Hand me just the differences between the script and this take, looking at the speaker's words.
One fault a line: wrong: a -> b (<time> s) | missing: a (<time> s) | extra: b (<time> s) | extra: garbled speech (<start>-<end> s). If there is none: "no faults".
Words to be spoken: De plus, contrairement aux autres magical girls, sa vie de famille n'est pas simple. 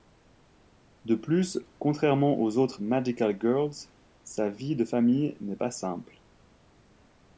no faults